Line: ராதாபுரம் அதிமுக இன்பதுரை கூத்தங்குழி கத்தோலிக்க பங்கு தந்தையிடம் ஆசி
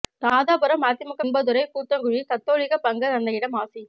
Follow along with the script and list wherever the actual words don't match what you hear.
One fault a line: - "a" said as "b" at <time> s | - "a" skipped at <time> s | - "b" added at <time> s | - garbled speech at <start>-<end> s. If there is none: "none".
none